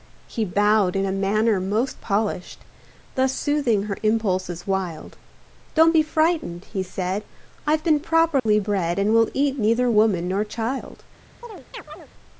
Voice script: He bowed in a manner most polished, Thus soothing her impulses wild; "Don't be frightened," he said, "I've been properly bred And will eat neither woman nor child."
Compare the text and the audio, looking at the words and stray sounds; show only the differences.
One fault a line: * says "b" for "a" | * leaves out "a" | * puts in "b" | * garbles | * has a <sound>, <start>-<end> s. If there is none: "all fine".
* has a dropout, 8.4-8.5 s
* has a chirp, 11.4-12.1 s